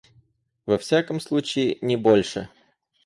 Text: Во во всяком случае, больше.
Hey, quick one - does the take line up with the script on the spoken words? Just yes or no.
no